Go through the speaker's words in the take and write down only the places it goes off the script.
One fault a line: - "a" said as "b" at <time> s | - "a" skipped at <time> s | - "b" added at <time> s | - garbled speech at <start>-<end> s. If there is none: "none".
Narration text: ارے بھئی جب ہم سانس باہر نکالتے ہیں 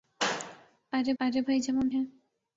- "ارے" added at 1.2 s
- "سانس باہر نکالتے" skipped at 1.9 s